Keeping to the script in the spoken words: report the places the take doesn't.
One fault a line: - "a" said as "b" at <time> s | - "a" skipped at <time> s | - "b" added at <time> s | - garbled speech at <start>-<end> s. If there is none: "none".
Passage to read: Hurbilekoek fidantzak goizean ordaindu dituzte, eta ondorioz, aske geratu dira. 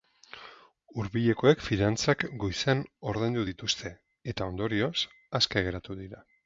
none